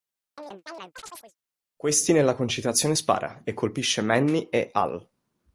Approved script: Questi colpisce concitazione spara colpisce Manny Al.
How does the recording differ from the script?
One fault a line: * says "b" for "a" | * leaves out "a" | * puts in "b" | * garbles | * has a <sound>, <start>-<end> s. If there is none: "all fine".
* has a chirp, 0.4-1.4 s
* says "nella" for "colpisce"
* puts in "e"
* puts in "e"